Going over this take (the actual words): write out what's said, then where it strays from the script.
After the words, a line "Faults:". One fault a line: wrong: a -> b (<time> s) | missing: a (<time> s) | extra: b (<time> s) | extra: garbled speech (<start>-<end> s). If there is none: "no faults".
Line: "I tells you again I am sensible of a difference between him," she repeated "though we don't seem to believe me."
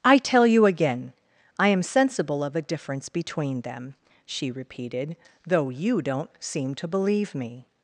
"I tell you again I am sensible of a difference between them," she repeated "though you don't seem to believe me."
Faults:
wrong: tells -> tell (0.2 s)
wrong: him -> them (3.6 s)
wrong: we -> you (5.7 s)